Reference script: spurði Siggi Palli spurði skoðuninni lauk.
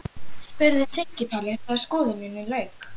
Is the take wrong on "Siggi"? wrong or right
right